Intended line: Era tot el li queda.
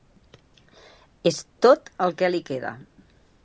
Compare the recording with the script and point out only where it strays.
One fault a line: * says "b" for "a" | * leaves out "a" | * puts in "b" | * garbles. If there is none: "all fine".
* says "És" for "Era"
* puts in "que"